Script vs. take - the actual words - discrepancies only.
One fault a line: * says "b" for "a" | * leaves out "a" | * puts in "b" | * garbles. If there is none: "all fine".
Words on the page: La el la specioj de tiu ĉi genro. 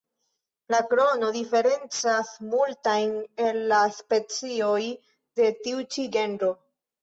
* puts in "krono diferencas multajn"